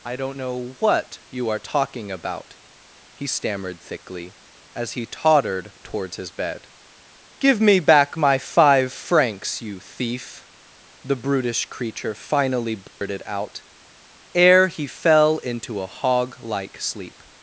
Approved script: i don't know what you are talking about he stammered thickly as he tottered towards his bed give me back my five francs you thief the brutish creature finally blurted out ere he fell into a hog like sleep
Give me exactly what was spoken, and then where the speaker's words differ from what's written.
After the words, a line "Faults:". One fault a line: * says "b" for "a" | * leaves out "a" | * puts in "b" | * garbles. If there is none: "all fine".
i don't know what you are talking about he stammered thickly as he tottered towards his bed give me back my five francs you thief the brutish creature finally blurted out ere he fell into a hog like sleep
Faults:
all fine